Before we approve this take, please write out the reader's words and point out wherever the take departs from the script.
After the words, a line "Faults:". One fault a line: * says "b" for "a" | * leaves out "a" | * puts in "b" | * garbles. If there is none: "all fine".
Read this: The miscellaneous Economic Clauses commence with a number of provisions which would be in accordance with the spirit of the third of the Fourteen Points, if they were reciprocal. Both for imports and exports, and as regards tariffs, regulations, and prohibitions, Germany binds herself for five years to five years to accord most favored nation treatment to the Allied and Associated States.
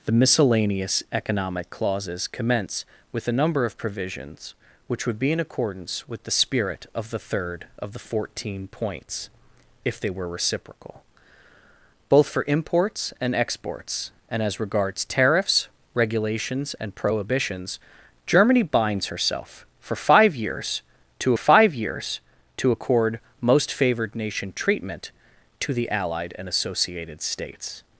The miscellaneous Economic Clauses commence with a number of provisions which would be in accordance with the spirit of the third of the Fourteen Points, if they were reciprocal. Both for imports and exports, and as regards tariffs, regulations, and prohibitions, Germany binds herself for five years to five years to accord most favored nation treatment to the Allied and Associated States.
Faults:
all fine